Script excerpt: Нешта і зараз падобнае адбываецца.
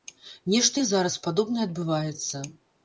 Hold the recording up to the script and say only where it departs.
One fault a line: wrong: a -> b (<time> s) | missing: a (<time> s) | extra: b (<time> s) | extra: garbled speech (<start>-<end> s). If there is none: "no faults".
no faults